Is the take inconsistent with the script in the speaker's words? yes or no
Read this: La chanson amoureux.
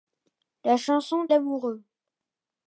no